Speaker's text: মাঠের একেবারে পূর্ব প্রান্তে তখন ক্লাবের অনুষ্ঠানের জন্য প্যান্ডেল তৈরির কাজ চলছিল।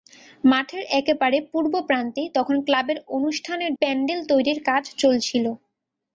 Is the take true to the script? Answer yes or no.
no